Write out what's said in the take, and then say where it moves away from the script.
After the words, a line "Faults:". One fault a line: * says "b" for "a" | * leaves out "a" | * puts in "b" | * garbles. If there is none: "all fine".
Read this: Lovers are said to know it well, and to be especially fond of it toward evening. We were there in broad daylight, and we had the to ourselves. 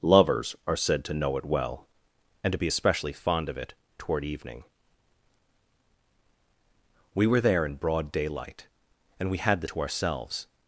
Lovers are said to know it well, and to be especially fond of it toward evening. We were there in broad daylight, and we had the to ourselves.
Faults:
all fine